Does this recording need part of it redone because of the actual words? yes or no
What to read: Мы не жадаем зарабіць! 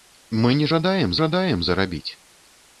yes